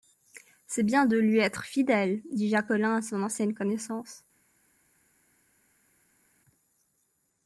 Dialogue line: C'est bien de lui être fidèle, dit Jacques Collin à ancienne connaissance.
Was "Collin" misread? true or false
false